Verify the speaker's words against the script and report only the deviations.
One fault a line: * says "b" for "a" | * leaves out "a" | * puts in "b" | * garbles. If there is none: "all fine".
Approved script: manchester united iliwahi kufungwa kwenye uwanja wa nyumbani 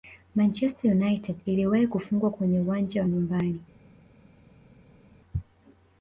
all fine